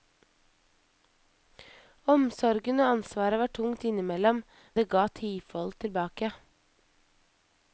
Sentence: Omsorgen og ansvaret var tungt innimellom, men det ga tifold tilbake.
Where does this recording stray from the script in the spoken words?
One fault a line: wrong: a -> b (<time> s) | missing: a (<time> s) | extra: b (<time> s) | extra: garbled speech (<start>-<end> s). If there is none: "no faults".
missing: men (4.4 s)